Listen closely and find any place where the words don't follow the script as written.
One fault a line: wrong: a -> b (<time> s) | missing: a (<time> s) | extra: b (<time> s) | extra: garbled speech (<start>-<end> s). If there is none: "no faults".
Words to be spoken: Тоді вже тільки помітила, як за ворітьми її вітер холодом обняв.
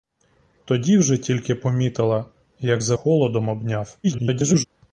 missing: ворітьми її вітер (3.0 s)
extra: garbled speech (4.0-4.6 s)